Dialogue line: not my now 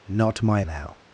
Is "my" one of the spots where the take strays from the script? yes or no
no